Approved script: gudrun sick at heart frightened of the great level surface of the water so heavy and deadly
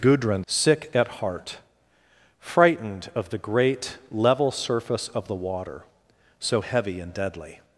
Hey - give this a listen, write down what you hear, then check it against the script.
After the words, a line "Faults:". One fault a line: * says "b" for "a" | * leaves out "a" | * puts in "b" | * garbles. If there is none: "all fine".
gudrun sick at heart frightened of the great level surface of the water so heavy and deadly
Faults:
all fine